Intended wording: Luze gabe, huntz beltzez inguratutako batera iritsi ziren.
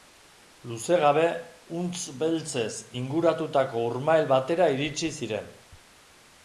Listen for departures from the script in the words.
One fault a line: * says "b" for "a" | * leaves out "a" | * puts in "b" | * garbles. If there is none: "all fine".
* puts in "urmael"